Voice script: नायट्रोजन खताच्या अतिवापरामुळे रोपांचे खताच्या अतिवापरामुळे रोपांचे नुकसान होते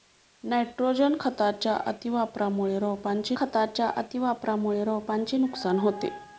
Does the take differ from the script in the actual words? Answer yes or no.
no